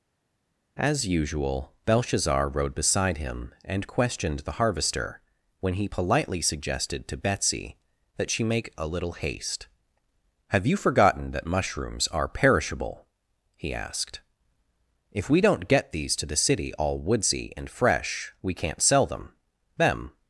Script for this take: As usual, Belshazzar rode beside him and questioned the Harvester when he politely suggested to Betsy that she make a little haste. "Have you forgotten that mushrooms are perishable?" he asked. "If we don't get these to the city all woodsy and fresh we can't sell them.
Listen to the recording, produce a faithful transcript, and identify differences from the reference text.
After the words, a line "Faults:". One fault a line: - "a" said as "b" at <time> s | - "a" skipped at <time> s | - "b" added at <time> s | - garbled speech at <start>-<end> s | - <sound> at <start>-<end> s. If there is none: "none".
As usual, Belshazzar rode beside him and questioned the Harvester when he politely suggested to Betsy that she make a little haste. "Have you forgotten that mushrooms are perishable?" he asked. "If we don't get these to the city all woodsy and fresh we can't sell them them.
Faults:
- "them" added at 19.8 s